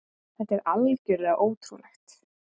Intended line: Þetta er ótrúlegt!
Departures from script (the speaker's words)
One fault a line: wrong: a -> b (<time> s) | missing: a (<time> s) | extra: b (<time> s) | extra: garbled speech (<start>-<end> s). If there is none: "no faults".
extra: algjörlega (0.7 s)